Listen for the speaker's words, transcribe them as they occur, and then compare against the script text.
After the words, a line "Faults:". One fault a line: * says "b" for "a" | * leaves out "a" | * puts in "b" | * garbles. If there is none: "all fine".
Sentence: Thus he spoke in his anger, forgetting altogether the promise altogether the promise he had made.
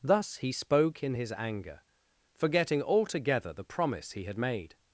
Thus he spoke in his anger, forgetting altogether the promise he had made.
Faults:
* leaves out "altogether the promise"